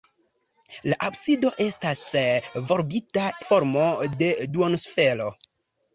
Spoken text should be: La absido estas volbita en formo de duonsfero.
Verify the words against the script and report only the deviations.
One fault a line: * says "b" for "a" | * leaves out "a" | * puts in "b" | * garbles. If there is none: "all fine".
* leaves out "en"